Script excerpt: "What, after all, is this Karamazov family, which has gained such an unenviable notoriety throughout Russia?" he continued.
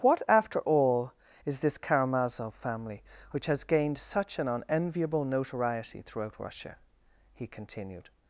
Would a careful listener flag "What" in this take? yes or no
no